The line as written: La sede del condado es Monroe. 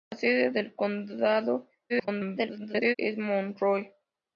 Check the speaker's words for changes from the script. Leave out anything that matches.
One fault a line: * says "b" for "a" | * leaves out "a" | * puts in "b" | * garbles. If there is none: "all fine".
* garbles